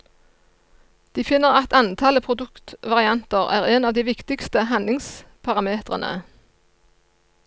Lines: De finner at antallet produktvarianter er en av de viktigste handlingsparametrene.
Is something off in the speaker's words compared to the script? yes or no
no